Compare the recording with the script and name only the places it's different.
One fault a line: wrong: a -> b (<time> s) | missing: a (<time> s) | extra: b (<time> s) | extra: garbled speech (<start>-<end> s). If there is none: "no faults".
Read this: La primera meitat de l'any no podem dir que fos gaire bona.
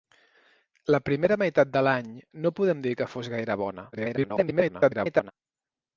extra: garbled speech (3.9-5.3 s)